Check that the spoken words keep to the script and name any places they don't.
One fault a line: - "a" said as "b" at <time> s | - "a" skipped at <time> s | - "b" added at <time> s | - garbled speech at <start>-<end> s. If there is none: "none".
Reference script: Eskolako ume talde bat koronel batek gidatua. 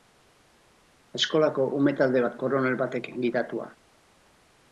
none